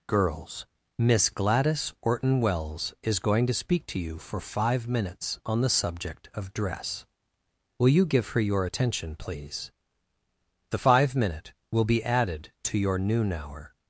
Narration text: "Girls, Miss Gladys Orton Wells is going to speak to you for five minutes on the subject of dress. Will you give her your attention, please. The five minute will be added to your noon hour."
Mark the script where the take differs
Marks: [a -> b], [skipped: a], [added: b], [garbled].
"Girls, Miss Gladys Orton Wells is going to speak to you for five minutes on the subject of dress. Will you give her your attention, please. The five minute will be added to your noon hour."